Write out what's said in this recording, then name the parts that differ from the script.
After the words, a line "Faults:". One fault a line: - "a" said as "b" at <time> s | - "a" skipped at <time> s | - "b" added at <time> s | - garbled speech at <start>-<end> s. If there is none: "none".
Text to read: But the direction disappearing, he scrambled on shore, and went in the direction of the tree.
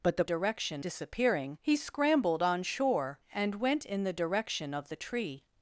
But the direction disappearing, he scrambled on shore, and went in the direction of the tree.
Faults:
none